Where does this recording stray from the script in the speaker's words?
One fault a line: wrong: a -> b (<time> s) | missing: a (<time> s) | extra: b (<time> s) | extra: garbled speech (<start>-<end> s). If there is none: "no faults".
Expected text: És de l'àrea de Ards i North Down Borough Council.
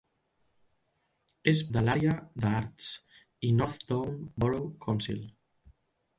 no faults